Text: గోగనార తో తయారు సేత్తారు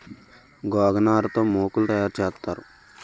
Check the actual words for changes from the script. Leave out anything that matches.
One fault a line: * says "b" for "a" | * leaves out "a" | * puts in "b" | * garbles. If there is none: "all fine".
* puts in "మోకులు"